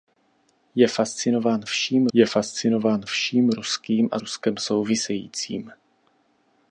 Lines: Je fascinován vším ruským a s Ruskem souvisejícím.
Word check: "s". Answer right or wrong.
wrong